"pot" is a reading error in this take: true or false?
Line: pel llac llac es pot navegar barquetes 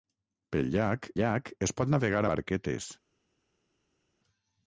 false